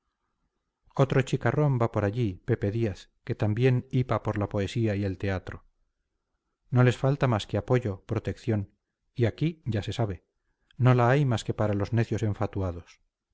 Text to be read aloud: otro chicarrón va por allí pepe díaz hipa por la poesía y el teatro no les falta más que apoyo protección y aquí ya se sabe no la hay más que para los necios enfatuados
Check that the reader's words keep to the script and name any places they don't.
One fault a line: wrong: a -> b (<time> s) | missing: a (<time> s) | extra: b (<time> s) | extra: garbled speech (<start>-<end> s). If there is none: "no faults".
extra: que también (3.2 s)